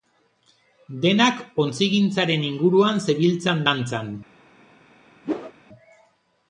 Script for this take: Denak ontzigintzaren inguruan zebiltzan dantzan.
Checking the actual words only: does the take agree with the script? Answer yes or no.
yes